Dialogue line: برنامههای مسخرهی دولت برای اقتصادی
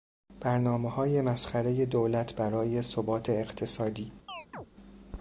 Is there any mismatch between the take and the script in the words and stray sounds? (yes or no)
yes